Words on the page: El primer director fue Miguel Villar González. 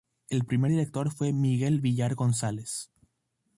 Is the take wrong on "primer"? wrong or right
right